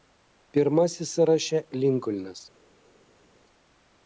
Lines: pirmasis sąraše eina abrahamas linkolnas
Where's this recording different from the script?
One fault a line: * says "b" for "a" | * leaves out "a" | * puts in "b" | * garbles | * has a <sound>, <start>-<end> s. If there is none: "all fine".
* leaves out "eina abrahamas"